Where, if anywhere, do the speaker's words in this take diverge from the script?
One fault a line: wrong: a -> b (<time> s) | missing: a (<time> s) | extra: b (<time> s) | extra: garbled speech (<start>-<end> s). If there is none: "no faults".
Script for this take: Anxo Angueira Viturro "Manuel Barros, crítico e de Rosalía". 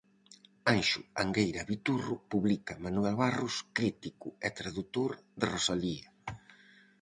extra: publica (2.3 s)
extra: tradutor (4.6 s)